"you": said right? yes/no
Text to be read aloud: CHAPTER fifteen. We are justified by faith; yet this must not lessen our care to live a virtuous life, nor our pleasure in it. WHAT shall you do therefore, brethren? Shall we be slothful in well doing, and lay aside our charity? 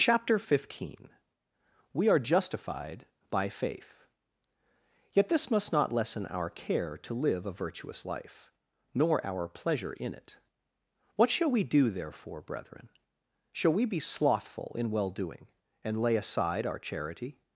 no